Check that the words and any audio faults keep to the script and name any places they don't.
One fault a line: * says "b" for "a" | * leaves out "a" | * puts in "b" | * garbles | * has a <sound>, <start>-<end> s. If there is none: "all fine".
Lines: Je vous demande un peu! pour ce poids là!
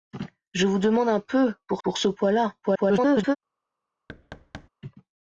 * puts in "pour"
* garbles
* has a thud, 4.1-4.7 s